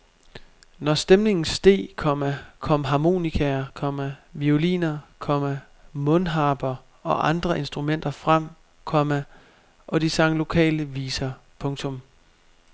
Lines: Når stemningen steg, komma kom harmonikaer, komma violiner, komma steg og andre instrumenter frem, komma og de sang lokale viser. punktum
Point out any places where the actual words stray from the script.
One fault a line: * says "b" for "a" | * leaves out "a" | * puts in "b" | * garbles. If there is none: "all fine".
* says "mundharper" for "steg"